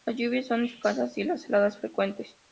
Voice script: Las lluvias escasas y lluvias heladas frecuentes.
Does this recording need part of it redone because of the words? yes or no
yes